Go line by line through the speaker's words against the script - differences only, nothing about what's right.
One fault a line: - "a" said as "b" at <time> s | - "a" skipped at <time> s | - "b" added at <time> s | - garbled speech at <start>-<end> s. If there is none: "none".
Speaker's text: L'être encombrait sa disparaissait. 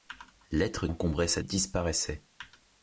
none